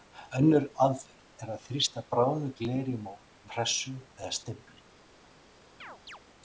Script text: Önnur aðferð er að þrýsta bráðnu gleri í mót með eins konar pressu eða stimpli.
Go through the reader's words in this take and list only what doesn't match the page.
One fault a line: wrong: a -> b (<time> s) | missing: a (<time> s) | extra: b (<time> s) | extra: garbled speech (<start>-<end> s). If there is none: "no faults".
missing: með eins konar (3.2 s)